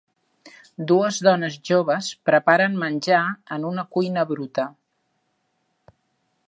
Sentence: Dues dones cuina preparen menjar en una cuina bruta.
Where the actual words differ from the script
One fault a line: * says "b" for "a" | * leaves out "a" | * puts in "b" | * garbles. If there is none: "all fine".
* says "joves" for "cuina"